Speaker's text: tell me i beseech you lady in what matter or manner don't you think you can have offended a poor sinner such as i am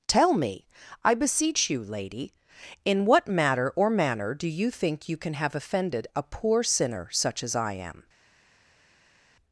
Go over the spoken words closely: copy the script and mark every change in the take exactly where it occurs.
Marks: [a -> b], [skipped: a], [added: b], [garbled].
tell me i beseech you lady in what matter or manner [don't -> do] you think you can have offended a poor sinner such as i am